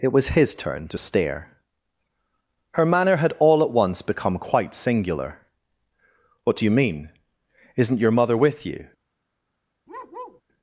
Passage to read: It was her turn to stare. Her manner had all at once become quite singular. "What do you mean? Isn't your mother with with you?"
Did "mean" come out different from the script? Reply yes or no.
no